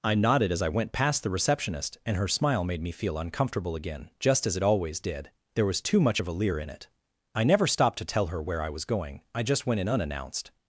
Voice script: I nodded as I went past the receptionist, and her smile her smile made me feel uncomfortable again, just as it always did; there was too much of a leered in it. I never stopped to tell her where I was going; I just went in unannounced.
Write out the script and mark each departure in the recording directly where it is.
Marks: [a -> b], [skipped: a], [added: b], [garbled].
I nodded as I went past the receptionist, and her smile [skipped: her smile] made me feel uncomfortable again, just as it always did; there was too much of a [leered -> leer] in it. I never stopped to tell her where I was going; I just went in unannounced.